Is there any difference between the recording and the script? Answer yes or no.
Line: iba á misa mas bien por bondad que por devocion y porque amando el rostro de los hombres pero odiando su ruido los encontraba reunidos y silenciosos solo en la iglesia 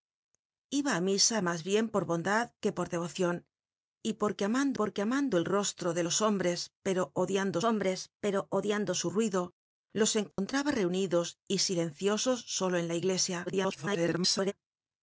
yes